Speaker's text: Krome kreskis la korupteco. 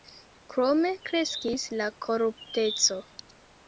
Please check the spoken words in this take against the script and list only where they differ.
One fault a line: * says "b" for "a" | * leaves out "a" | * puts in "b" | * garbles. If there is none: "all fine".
all fine